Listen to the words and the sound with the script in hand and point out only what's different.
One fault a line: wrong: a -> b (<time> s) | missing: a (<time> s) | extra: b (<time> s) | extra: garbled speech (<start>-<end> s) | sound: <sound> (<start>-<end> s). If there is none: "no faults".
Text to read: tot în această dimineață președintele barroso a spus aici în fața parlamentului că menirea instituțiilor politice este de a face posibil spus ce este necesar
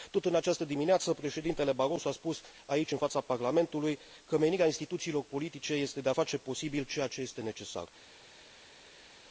wrong: spus -> ceea (6.8 s)